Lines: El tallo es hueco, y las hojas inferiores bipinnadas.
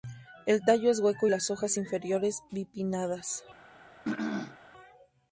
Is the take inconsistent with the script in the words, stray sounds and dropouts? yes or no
yes